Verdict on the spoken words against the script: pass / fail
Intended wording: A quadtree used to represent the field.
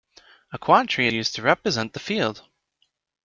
pass